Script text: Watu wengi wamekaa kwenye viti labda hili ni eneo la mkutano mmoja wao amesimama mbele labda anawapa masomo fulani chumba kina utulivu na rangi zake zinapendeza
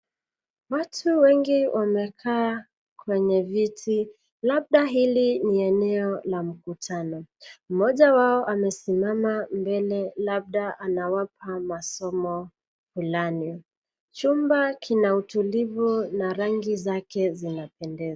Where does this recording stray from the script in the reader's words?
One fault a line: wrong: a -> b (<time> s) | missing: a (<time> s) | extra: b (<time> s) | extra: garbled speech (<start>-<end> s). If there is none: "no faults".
no faults